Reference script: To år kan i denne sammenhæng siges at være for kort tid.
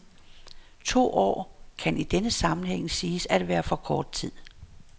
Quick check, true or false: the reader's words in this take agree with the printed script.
true